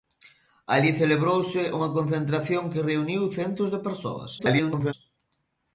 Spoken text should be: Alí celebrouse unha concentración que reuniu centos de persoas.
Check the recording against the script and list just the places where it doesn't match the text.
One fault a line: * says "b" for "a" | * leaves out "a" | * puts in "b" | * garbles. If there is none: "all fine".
* garbles